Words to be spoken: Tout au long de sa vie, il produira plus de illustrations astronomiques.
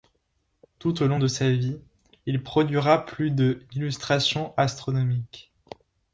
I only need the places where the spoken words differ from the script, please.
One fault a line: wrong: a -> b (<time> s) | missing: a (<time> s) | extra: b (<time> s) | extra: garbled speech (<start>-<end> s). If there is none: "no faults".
no faults